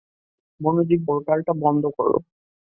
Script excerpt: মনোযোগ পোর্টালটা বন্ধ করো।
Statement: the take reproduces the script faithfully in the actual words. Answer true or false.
true